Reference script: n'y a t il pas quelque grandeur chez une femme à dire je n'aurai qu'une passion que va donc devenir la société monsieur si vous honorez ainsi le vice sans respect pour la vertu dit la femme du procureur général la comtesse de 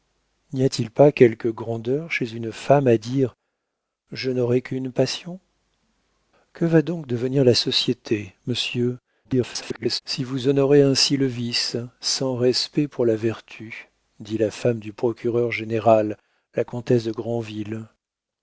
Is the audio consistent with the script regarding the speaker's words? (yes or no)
no